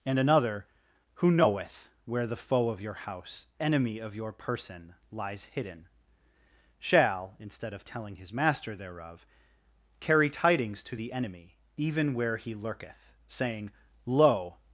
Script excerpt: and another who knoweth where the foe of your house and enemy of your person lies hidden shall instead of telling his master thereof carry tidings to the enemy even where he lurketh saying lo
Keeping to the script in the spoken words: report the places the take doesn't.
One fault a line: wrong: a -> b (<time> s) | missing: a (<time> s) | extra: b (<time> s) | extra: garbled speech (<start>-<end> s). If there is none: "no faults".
missing: and (3.5 s)